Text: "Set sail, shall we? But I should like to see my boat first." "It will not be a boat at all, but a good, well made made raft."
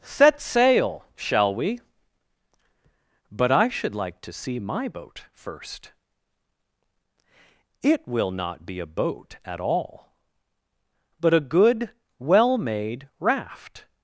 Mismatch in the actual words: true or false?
true